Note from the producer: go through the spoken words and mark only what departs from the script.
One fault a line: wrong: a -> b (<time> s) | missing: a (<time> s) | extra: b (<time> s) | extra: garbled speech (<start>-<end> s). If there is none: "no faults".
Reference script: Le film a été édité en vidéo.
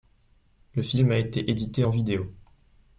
no faults